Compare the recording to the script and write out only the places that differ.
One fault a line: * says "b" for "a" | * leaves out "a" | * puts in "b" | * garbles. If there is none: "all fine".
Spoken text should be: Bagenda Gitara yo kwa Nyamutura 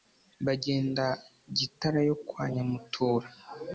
all fine